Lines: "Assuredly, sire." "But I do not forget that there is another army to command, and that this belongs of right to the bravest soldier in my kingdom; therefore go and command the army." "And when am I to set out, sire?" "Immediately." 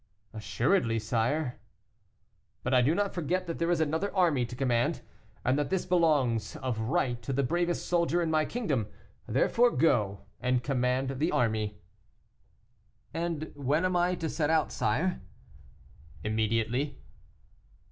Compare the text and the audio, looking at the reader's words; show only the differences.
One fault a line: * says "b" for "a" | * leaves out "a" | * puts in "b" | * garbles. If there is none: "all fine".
all fine